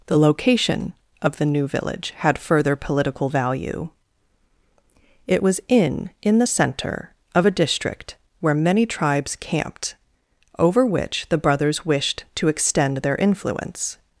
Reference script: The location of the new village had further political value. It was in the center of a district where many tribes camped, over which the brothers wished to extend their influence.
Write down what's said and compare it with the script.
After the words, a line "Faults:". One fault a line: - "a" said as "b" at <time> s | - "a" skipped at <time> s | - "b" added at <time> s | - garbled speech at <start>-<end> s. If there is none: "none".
The location of the new village had further political value. It was in in the center of a district where many tribes camped, over which the brothers wished to extend their influence.
Faults:
- "in" added at 6.2 s